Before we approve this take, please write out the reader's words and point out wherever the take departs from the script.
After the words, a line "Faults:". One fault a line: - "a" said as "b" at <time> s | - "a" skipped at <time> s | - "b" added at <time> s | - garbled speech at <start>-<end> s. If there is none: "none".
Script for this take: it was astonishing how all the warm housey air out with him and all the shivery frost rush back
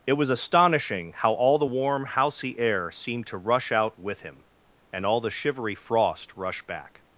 it was astonishing how all the warm housey air seemed to rush out with him and all the shivery frost rush back
Faults:
- "seemed to rush" added at 2.9 s